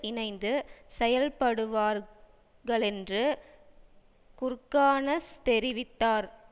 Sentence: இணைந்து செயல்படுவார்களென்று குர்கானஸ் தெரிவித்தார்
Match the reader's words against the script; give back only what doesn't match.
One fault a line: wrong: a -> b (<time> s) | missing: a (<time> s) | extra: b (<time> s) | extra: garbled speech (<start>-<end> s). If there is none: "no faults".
no faults